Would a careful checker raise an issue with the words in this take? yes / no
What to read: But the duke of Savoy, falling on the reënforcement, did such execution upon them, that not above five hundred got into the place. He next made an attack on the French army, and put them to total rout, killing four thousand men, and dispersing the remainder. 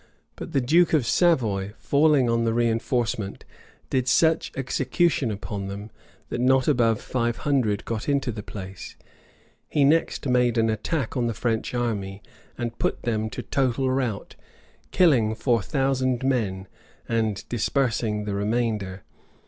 no